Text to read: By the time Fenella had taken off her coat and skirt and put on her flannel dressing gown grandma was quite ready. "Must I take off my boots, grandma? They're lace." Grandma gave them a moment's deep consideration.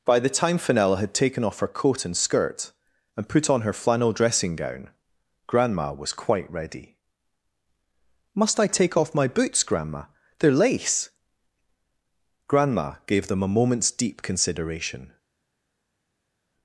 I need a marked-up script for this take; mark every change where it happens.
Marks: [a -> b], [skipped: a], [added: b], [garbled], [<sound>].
By the time Fenella had taken off her coat and skirt and put on her flannel dressing gown grandma was quite ready. "Must I take off my boots, grandma? They're lace." Grandma gave them a moment's deep consideration.